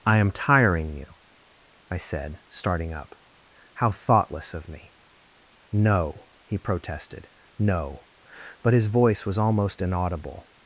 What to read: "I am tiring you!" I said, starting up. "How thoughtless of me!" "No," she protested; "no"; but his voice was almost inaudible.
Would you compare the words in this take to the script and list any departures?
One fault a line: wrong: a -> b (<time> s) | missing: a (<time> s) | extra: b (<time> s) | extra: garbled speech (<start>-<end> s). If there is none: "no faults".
wrong: she -> he (6.4 s)